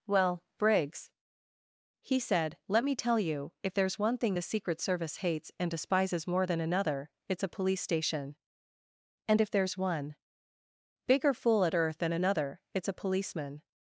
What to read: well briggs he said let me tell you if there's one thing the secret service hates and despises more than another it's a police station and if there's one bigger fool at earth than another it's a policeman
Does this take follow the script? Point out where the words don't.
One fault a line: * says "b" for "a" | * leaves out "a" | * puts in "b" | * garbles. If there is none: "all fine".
all fine